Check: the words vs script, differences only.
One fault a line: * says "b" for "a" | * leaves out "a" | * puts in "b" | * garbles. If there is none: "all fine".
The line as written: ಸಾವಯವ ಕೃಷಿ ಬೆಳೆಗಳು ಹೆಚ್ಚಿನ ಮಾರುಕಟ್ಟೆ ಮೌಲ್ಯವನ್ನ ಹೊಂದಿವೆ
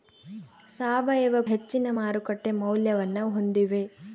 * leaves out "ಕೃಷಿ ಬೆಳೆಗಳು"